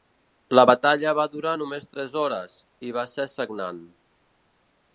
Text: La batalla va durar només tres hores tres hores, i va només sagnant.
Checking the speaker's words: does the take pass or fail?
fail